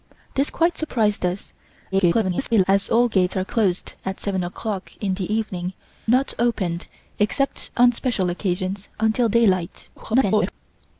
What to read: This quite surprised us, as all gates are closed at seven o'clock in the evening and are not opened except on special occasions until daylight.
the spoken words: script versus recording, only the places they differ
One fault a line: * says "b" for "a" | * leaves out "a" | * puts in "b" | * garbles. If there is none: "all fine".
* garbles
* leaves out "and are"
* garbles